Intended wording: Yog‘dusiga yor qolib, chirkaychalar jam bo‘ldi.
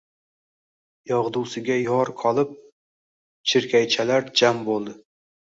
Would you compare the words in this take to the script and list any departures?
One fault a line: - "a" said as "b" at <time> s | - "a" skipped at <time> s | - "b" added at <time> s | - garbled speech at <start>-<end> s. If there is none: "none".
none